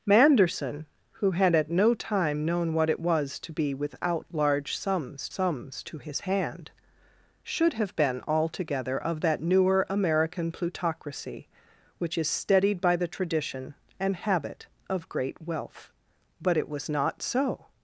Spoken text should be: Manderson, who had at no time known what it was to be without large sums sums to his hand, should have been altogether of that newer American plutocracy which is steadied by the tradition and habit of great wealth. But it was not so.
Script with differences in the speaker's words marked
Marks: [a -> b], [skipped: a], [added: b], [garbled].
Manderson, who had at no time known what it was to be without large sums sums to his hand, should have been altogether of that newer American plutocracy which is steadied by the tradition and habit of great wealth. But it was not so.